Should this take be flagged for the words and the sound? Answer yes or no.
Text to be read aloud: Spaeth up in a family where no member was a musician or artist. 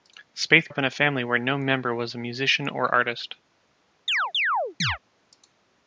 yes